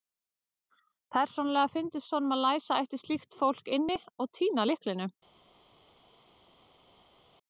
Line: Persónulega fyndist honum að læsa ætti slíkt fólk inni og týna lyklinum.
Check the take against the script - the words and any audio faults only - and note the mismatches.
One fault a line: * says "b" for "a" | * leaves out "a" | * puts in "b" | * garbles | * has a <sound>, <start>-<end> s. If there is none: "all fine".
all fine